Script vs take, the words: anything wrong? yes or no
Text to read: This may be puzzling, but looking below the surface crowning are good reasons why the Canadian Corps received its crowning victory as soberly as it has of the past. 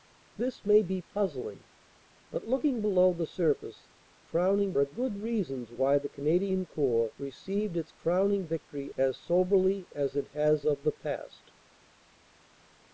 no